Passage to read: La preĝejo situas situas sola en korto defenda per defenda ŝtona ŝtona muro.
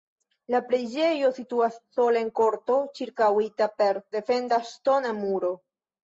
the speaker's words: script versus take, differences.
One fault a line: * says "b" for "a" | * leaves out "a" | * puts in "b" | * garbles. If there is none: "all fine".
* leaves out "situas"
* says "ĉirkaŭita" for "defenda"
* leaves out "ŝtona"